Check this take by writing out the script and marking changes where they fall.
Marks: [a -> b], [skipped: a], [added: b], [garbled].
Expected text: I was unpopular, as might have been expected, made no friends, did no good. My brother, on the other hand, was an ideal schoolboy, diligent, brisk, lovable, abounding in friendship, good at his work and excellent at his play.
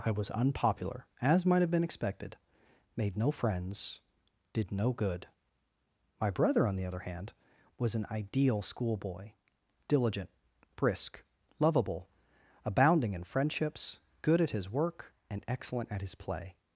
I was unpopular, as might have been expected, made no friends, did no good. My brother, on the other hand, was an ideal schoolboy, diligent, brisk, lovable, abounding in [friendship, -> friendships] good at his work and excellent at his play.